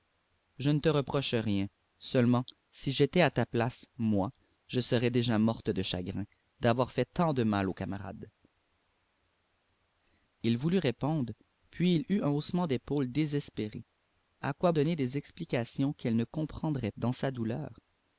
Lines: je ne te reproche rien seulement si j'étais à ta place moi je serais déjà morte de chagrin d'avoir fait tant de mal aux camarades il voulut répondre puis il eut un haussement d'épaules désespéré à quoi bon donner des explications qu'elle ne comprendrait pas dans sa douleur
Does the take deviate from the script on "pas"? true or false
true